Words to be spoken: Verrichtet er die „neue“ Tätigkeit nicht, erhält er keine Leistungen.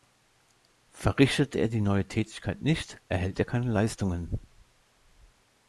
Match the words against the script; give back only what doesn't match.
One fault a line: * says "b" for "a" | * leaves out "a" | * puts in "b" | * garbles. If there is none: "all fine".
all fine